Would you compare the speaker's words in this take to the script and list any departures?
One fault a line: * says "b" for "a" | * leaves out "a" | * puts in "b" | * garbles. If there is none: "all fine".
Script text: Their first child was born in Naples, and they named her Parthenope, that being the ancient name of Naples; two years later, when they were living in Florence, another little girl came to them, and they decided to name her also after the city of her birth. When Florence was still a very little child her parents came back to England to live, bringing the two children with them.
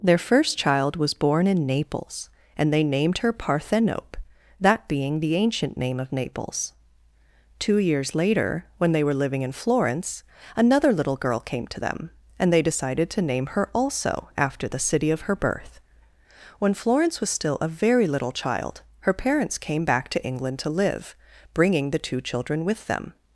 all fine